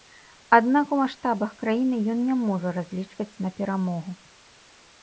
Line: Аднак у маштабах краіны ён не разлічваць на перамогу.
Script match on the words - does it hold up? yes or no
no